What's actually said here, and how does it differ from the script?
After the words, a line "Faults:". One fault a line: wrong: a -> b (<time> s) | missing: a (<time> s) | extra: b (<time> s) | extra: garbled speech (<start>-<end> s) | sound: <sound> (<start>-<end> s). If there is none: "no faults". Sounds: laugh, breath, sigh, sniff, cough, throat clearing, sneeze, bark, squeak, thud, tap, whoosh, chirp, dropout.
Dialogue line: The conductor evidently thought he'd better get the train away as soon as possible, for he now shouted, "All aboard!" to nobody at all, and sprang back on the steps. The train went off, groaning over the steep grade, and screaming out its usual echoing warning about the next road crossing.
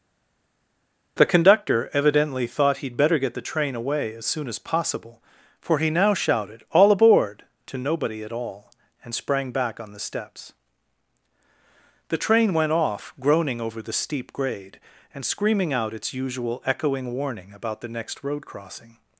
The conductor evidently thought he'd better get the train away as soon as possible, for he now shouted, "All aboard!" to nobody at all, and sprang back on the steps. The train went off, groaning over the steep grade, and screaming out its usual echoing warning about the next road crossing.
Faults:
no faults